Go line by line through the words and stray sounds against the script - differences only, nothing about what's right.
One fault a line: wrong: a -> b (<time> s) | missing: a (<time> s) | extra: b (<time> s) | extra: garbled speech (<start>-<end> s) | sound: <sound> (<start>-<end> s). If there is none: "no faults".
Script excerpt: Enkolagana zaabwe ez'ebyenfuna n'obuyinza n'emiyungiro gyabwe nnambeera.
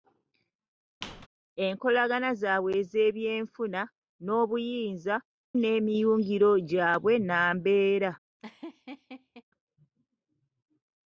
sound: squeak (1.0-1.3 s)
sound: laugh (8.4-9.4 s)